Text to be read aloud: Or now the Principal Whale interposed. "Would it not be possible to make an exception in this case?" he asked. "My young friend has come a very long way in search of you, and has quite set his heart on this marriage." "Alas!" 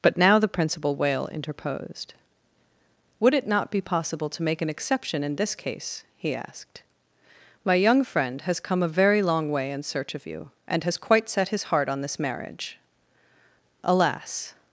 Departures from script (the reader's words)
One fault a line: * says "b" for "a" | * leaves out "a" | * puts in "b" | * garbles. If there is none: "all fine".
* says "But" for "Or"